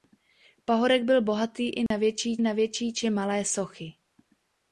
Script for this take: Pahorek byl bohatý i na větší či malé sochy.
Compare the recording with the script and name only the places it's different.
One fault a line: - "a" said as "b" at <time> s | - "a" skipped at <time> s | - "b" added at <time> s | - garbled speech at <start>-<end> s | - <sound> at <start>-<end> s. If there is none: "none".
- dropout at 1.9-1.9 s
- "na větší" added at 2.4 s